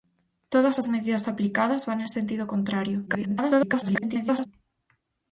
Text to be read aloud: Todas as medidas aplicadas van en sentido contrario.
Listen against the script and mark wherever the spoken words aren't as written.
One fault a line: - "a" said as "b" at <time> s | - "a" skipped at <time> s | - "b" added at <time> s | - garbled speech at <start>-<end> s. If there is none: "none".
- garbled speech at 3.1-4.5 s